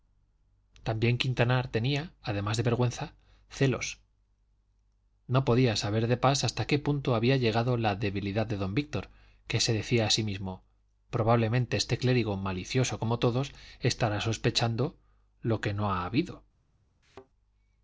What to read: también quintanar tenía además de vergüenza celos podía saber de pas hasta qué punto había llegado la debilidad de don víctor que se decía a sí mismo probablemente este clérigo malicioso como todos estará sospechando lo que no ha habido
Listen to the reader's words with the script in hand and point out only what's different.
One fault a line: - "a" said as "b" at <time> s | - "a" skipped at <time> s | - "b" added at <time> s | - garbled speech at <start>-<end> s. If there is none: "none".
- "no" added at 5.3 s